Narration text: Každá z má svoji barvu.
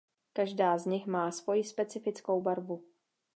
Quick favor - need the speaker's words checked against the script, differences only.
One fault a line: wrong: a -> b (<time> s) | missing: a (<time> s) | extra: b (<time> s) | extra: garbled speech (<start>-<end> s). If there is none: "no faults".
extra: nich (0.8 s)
extra: specifickou (1.6 s)